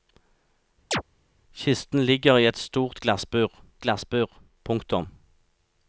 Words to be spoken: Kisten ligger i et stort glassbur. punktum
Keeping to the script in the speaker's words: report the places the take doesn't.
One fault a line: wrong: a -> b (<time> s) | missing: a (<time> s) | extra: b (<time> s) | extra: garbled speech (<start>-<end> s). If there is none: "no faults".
extra: glassbur (3.8 s)